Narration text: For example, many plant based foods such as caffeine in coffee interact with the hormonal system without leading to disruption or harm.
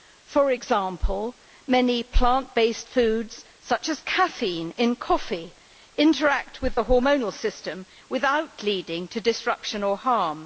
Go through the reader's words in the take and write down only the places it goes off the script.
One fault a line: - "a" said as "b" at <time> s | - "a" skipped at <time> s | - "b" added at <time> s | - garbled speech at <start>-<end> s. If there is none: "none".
none